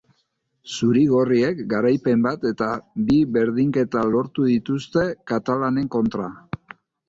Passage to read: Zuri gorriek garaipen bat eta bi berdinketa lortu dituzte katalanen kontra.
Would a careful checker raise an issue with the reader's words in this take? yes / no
no